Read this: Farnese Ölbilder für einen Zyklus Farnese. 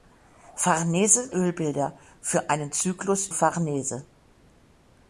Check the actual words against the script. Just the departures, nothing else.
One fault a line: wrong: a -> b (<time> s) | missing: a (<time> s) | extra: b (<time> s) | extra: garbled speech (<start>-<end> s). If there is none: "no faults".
no faults